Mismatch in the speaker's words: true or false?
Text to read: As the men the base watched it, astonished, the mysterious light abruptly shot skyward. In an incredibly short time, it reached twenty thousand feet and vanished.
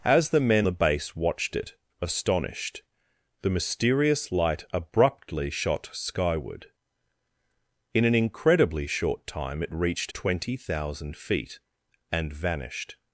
false